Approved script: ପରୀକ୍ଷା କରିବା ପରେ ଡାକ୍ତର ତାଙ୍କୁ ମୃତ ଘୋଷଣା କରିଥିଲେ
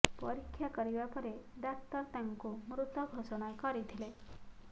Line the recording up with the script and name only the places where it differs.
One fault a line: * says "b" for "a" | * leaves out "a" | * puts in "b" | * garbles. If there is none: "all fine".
all fine